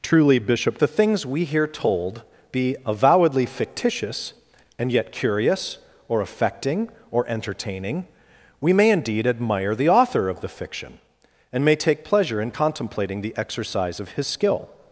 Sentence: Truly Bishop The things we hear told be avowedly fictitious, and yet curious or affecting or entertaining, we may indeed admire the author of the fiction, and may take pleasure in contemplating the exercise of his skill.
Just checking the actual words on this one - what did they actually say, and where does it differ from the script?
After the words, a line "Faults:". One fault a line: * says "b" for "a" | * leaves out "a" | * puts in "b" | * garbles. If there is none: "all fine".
Truly Bishop The things we hear told be avowedly fictitious, and yet curious or affecting or entertaining, we may indeed admire the author of the fiction, and may take pleasure in contemplating the exercise of his skill.
Faults:
all fine